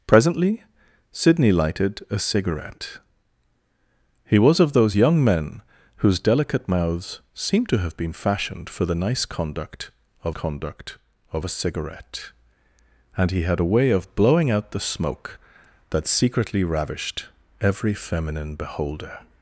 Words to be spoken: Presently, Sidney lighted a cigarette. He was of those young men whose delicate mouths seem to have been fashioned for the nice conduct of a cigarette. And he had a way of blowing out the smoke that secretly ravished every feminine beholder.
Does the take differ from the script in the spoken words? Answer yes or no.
yes